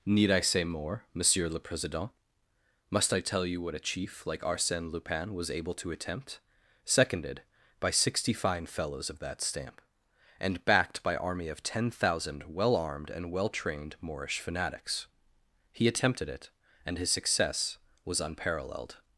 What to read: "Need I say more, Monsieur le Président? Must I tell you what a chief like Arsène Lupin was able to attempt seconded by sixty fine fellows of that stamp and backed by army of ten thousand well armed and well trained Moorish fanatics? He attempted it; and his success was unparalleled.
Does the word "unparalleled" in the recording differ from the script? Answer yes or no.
no